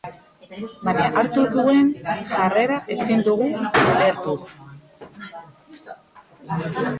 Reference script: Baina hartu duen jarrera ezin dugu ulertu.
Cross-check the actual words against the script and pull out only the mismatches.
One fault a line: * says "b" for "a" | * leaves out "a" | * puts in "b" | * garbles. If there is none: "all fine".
all fine